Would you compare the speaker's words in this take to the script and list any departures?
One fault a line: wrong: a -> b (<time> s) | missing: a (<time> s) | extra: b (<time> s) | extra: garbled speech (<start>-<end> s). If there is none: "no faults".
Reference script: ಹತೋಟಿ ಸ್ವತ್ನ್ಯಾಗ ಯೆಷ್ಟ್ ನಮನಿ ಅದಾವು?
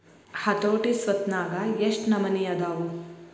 no faults